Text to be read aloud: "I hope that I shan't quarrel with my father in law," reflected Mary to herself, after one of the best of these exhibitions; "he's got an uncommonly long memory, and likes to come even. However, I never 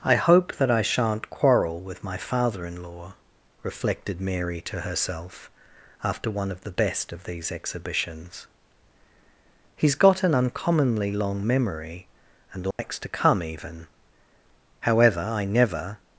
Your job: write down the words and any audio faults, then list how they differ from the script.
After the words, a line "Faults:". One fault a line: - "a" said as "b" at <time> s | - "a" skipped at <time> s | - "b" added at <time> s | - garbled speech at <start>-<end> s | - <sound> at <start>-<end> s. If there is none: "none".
"I hope that I shan't quarrel with my father in law," reflected Mary to herself, after one of the best of these exhibitions; "he's got an uncommonly long memory, and likes to come even. However, I never
Faults:
- dropout at 12.7-12.8 s